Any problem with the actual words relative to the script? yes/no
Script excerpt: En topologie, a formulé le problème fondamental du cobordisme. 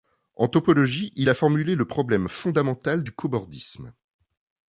yes